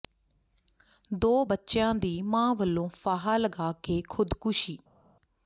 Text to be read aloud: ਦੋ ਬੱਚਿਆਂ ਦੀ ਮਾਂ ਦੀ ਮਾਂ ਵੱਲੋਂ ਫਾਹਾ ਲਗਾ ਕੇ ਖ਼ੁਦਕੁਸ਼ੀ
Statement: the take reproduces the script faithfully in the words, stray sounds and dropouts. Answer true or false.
false